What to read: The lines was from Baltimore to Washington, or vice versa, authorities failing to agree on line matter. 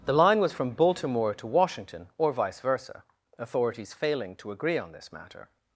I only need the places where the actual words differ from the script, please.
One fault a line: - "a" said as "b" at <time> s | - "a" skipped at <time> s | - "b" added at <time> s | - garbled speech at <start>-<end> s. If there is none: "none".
- "lines" said as "line" at 0.1 s
- "line" said as "this" at 4.9 s